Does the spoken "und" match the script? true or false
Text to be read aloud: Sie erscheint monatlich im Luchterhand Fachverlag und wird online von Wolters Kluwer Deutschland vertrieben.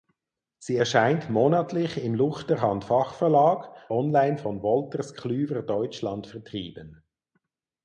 false